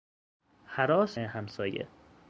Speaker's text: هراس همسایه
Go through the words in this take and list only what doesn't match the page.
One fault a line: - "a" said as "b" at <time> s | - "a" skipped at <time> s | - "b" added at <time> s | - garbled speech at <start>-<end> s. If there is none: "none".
none